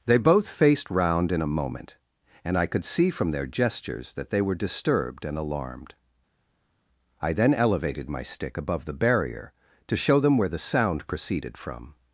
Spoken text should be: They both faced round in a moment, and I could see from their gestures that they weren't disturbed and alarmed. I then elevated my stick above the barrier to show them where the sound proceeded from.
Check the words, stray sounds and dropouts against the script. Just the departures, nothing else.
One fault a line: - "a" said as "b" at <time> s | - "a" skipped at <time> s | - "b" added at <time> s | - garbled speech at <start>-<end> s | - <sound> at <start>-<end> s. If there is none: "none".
- "weren't" said as "were" at 4.4 s